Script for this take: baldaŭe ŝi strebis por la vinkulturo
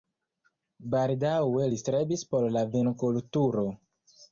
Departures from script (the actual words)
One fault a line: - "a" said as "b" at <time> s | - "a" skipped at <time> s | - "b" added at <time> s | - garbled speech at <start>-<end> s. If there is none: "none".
- "ŝi" said as "li" at 1.7 s